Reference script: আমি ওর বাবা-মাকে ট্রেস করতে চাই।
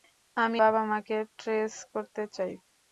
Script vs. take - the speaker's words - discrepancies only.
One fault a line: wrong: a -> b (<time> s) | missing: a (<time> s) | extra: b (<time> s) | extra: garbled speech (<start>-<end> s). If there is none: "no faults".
missing: ওর (0.6 s)